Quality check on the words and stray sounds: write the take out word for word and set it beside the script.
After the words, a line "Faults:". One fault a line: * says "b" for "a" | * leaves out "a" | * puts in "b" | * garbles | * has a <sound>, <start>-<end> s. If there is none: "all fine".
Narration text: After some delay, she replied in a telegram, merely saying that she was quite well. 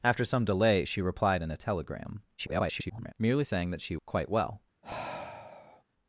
After some delay, she replied in a telegram, [garbled] merely saying that she quite well.
Faults:
* garbles
* leaves out "was"
* has a sigh, 4.8-5.8 s